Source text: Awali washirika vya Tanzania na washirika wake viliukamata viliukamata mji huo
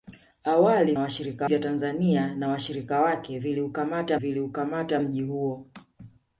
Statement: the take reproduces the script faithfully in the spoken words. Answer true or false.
true